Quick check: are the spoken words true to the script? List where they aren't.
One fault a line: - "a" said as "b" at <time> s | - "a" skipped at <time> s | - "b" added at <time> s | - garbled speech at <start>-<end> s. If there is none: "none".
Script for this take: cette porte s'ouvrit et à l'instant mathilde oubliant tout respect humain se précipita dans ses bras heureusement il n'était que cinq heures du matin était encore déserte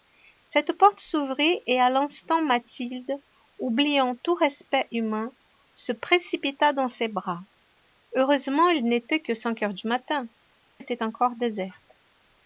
none